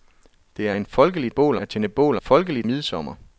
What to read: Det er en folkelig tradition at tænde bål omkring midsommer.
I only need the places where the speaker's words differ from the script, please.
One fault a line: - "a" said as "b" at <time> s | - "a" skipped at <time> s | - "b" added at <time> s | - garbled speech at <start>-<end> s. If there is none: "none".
- "tradition" said as "bål" at 1.3 s
- "omkring" said as "folkelig" at 2.2 s